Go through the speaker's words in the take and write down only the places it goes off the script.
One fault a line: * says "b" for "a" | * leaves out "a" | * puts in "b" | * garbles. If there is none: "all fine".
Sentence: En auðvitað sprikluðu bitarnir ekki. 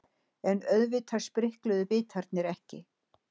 all fine